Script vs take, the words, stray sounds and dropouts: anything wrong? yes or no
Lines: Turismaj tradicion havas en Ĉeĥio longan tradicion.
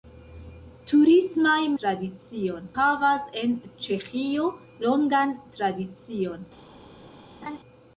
yes